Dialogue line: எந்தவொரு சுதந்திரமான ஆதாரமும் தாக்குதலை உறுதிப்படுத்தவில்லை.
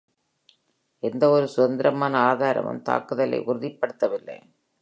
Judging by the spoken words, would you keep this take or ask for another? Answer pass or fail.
pass